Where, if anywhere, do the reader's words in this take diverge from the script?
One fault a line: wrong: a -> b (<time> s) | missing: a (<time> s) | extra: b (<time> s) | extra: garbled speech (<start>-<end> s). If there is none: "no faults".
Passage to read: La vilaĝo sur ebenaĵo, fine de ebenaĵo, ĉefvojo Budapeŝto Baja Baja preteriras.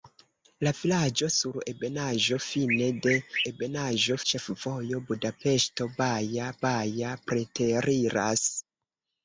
no faults